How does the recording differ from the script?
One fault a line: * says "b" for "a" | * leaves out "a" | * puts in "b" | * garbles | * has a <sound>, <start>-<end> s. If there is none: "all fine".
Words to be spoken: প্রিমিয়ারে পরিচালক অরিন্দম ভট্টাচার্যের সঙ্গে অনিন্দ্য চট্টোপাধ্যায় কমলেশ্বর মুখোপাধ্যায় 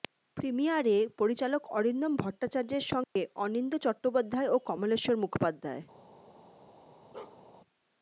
* has a dropout, 3.0-3.2 s
* puts in "ও"
* has a bark, 7.1-7.4 s